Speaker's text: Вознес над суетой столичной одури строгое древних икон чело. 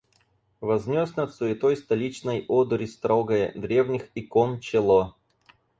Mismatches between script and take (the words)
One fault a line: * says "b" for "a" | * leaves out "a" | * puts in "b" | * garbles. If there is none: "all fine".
all fine